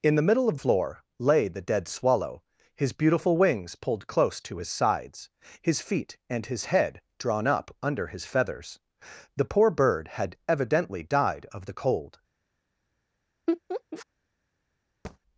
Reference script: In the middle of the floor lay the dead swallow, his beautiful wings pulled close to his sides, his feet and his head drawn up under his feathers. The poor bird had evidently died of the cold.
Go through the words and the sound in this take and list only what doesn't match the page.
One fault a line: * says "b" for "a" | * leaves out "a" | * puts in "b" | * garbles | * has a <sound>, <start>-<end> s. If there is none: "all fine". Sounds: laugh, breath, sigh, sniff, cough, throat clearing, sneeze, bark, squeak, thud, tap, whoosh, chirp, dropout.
* leaves out "the"
* has a laugh, 13.5-14.1 s
* has a thud, 15.0-15.2 s